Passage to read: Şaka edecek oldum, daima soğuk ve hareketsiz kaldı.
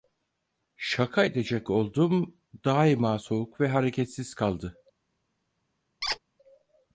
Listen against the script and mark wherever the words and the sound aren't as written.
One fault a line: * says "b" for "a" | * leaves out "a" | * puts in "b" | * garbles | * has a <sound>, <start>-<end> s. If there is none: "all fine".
* has a squeak, 6.0-6.2 s